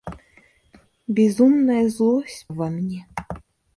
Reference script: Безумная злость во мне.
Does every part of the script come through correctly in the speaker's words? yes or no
yes